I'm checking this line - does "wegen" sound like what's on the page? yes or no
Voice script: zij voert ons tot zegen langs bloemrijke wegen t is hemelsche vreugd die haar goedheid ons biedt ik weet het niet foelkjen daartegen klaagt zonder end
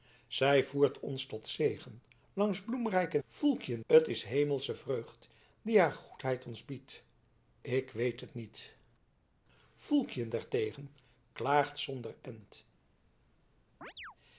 no